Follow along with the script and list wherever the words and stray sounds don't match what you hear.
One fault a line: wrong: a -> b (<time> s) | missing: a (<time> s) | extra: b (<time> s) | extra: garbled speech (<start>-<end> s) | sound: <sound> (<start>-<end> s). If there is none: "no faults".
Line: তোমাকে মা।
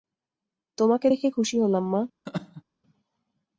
extra: দেখে খুশি হলাম (1.1 s)
sound: laugh (2.3-2.6 s)